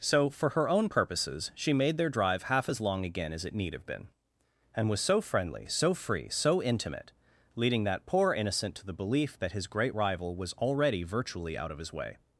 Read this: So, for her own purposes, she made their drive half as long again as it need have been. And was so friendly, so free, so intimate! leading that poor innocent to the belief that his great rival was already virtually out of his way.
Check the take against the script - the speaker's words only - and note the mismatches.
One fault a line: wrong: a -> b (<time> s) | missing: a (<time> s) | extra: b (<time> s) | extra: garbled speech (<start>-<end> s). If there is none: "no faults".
no faults